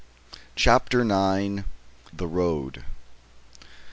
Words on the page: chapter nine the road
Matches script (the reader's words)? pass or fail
pass